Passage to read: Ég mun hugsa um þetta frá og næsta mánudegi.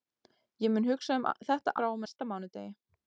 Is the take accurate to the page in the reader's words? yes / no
yes